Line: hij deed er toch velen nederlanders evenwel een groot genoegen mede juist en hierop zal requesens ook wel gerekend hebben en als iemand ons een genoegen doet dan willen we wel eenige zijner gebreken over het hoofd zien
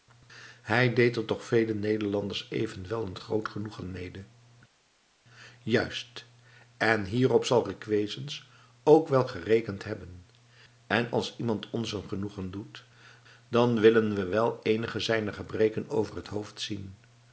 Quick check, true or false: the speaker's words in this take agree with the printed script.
true